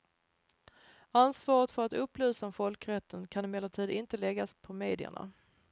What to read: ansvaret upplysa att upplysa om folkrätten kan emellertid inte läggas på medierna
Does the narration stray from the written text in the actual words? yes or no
yes